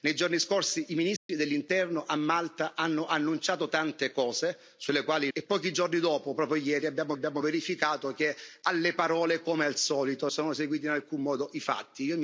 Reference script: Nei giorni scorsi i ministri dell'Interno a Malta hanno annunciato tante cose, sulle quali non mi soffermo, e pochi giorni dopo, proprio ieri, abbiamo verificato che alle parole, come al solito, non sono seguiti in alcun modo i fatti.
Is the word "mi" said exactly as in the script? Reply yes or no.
no